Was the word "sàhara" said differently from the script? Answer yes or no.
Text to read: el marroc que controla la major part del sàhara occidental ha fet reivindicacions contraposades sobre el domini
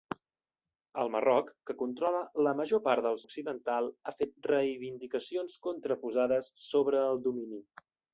yes